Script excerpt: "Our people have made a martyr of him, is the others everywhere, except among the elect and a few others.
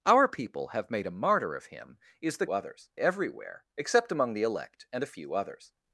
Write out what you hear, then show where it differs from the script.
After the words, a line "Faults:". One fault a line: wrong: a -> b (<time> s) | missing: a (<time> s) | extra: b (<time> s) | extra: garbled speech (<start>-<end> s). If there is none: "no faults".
"Our people have made a martyr of him, is the others everywhere, except among the elect and a few others.
Faults:
no faults